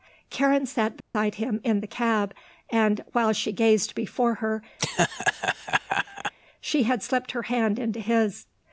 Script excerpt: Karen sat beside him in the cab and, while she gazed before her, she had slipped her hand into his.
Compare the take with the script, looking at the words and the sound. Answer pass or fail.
fail